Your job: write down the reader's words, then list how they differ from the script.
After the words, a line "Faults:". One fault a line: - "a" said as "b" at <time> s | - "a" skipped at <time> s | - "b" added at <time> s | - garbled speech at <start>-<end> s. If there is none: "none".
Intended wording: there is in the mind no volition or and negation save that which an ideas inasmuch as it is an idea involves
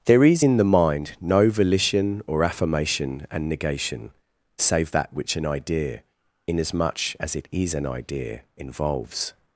there is in the mind no volition or affirmation and negation save that which an idea inasmuch as it is an idea involves
Faults:
- "affirmation" added at 2.4 s
- "ideas" said as "idea" at 5.4 s